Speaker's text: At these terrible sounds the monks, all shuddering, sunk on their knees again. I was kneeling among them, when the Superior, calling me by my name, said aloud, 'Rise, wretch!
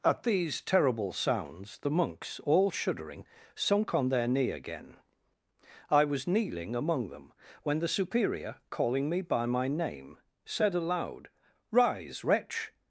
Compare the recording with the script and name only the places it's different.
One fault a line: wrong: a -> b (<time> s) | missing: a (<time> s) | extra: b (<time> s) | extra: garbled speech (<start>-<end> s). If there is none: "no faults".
wrong: knees -> knee (4.3 s)